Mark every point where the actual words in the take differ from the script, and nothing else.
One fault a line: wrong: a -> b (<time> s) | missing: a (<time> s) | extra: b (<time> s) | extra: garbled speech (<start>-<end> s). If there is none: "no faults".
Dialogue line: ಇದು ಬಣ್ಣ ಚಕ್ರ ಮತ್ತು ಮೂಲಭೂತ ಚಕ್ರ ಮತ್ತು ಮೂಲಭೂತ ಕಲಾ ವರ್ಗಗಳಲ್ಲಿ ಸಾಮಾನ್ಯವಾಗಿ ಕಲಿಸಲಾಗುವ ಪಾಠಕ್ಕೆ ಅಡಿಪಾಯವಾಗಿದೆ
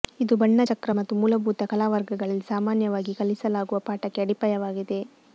missing: ಚಕ್ರ ಮತ್ತು ಮೂಲಭೂತ (1.6 s)